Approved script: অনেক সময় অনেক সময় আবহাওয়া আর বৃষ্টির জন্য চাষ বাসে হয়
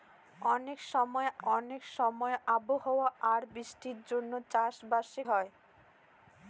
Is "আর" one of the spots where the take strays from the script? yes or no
no